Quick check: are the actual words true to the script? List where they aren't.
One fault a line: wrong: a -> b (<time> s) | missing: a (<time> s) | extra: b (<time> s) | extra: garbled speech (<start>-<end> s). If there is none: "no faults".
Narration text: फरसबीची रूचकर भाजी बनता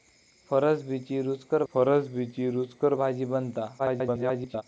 extra: फरसबीची रूचकर (1.7 s)
extra: garbled speech (3.8-4.6 s)